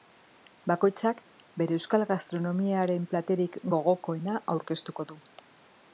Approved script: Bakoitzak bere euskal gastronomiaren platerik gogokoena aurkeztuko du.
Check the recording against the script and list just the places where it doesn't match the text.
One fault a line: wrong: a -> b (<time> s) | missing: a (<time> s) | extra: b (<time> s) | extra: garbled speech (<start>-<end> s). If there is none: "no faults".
no faults